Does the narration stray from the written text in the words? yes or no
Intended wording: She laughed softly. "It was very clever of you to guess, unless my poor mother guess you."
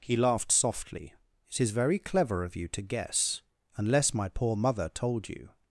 yes